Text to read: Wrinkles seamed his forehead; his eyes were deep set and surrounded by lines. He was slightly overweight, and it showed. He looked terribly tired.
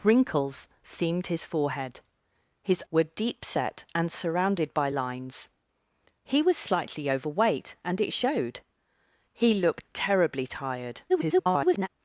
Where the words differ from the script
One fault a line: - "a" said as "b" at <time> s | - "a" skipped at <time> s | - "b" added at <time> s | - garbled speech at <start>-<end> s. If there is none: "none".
- "eyes" skipped at 2.8 s
- garbled speech at 11.1-11.9 s